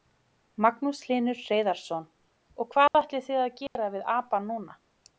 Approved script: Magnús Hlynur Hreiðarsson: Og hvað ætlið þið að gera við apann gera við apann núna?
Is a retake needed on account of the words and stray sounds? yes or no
yes